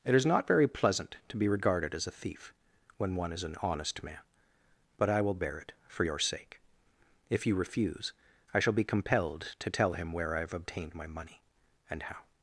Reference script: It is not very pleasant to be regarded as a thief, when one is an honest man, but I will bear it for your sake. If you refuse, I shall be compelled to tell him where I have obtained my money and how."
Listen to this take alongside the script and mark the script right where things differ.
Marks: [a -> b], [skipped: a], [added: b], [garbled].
It is not very pleasant to be regarded as a thief, when one is an honest man, but I will bear it for your sake. If you refuse, I shall be compelled to tell him where I have obtained my money and how."